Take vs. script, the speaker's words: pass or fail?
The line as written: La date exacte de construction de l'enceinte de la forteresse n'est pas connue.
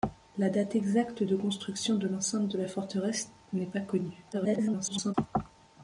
fail